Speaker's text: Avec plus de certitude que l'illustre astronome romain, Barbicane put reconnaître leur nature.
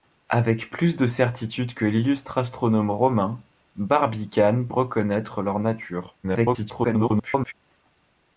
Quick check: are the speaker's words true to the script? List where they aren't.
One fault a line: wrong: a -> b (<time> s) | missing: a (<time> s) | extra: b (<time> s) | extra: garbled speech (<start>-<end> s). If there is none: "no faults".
missing: put (4.7 s)
extra: garbled speech (6.2-7.5 s)